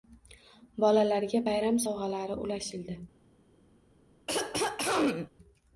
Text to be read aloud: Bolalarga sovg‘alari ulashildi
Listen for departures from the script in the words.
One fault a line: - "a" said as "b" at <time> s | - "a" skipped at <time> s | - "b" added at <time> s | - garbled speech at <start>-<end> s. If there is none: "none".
- "bayram" added at 1.5 s